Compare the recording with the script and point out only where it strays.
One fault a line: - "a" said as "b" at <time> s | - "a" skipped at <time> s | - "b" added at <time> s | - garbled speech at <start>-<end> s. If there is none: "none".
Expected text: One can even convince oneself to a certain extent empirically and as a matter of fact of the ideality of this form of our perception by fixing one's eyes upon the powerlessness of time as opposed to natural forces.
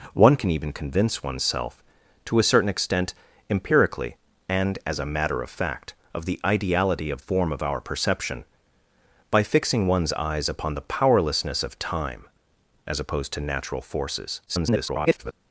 - "this" skipped at 7.2 s
- garbled speech at 14.5-15.3 s